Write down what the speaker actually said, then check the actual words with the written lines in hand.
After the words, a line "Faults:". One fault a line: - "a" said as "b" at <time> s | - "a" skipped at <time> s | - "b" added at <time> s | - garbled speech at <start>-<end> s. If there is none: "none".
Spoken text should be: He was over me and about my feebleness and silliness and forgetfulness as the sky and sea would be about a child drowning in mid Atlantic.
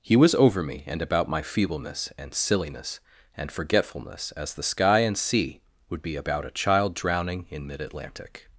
He was over me and about my feebleness and silliness and forgetfulness as the sky and sea would be about a child drowning in mid Atlantic.
Faults:
none